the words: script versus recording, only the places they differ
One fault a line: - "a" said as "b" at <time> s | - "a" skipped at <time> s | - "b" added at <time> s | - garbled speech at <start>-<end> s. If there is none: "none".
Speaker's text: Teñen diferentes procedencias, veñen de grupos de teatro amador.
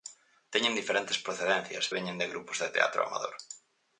none